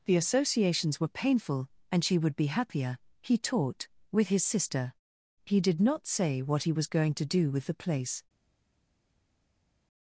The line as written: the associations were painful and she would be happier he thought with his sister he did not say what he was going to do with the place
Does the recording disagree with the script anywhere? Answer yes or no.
yes